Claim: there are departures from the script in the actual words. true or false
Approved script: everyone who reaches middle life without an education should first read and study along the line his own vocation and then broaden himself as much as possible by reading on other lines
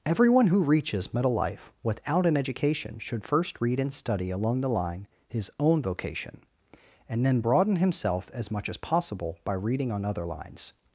false